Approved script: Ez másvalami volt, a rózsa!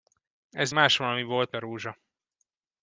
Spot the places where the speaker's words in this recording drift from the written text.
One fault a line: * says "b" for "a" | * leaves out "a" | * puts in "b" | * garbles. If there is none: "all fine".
all fine